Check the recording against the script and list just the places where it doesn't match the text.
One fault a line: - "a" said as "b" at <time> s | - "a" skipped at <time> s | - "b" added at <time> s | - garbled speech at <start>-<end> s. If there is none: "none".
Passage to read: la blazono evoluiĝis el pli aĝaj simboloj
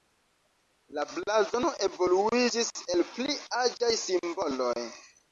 none